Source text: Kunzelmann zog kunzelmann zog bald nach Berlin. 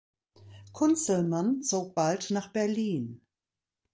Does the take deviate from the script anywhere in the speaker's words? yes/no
yes